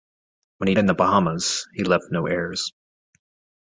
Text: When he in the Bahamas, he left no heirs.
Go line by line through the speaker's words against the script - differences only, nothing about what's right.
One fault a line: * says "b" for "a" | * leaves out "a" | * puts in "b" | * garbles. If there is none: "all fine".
all fine